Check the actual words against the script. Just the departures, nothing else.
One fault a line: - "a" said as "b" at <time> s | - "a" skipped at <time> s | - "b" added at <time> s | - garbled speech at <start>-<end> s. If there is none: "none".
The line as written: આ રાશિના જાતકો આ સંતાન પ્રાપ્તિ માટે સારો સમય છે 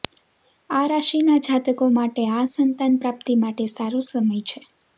- "માટે" added at 2.0 s